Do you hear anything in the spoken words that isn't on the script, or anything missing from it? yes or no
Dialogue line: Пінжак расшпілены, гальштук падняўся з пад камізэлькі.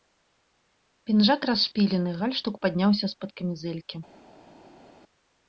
no